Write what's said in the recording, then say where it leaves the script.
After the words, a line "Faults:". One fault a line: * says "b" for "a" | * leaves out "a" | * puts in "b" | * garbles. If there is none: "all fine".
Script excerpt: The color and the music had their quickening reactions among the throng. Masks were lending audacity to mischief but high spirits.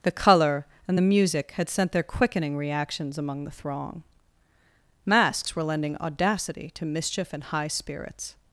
The color and the music had sent their quickening reactions among the throng. Masks were lending audacity to mischief and high spirits.
Faults:
* puts in "sent"
* says "and" for "but"